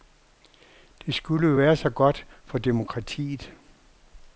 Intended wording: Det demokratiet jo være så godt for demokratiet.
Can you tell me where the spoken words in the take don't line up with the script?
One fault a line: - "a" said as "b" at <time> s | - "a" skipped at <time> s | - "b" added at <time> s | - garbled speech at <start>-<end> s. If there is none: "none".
- "demokratiet" said as "skulle" at 1.1 s